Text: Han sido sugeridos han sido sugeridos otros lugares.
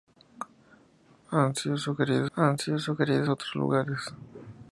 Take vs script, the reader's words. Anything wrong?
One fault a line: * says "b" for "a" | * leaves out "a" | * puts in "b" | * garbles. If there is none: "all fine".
all fine